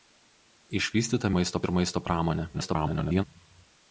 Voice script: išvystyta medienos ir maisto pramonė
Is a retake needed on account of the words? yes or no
yes